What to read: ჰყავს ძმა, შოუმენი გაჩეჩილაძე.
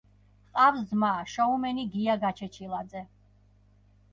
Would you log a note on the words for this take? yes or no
yes